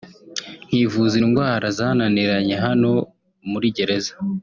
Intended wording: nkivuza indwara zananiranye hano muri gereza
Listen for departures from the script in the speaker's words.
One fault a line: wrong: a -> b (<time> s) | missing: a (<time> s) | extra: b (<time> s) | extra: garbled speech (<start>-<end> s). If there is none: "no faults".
no faults